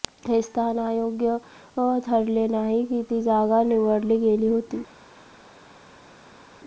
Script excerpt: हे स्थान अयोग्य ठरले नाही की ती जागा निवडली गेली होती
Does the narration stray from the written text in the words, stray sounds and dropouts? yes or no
no